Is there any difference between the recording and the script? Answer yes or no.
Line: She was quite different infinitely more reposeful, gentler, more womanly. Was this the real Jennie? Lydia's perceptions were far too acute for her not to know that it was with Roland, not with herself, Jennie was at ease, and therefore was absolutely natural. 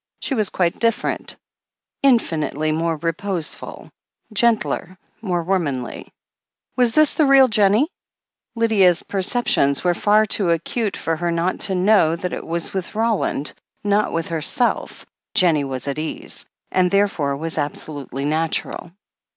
no